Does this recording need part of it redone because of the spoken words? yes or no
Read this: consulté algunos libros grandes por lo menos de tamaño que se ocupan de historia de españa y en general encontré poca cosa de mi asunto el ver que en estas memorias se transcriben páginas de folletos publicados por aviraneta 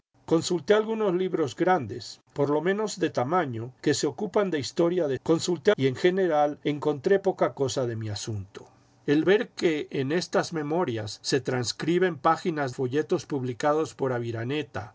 yes